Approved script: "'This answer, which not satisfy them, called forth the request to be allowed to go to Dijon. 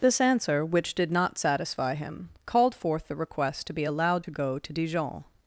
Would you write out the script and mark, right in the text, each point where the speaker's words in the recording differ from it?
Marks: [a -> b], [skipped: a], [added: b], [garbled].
"'This answer, which [added: did] not satisfy [them, -> him] called forth the request to be allowed to go to Dijon.